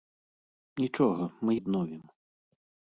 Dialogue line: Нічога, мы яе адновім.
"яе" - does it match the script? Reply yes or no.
no